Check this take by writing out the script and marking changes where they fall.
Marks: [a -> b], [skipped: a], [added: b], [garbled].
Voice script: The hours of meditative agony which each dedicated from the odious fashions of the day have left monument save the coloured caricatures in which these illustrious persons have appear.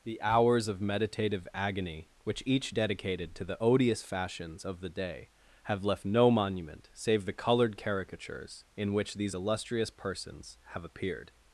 The hours of meditative agony which each dedicated [from -> to] the odious fashions of the day have left [added: no] monument save the coloured caricatures in which these illustrious persons have [appear. -> appeared]